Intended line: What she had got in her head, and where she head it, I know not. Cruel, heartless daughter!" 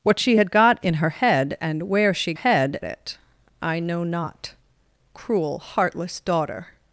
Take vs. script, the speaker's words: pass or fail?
pass